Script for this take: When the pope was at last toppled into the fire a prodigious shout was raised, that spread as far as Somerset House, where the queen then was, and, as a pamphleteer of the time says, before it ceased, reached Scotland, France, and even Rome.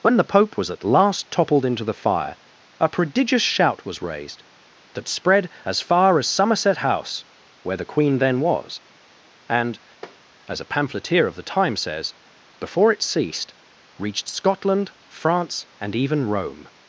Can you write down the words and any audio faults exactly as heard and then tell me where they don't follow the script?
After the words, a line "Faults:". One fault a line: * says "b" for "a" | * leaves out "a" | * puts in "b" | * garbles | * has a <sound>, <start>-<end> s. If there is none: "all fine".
When the pope was at last toppled into the fire a prodigious shout was raised, that spread as far as Somerset House, where the queen then was, and, as a pamphleteer of the time says, before it ceased, reached Scotland, France, and even Rome.
Faults:
* has a tap, 10.0-10.2 s